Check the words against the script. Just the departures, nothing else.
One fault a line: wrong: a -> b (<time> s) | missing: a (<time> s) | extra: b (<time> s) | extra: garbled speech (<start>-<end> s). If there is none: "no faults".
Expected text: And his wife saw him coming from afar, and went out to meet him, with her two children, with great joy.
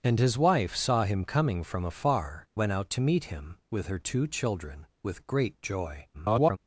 missing: and (2.5 s)
extra: garbled speech (6.1-6.6 s)